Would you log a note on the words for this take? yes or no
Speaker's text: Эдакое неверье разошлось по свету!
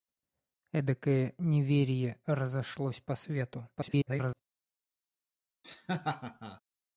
yes